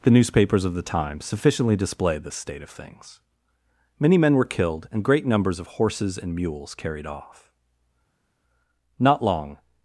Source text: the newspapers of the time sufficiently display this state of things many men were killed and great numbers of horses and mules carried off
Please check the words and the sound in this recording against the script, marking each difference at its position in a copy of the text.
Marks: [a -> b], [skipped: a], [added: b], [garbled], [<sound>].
the newspapers of the time sufficiently display this state of things many men were killed and great numbers of horses and mules carried off [added: not long]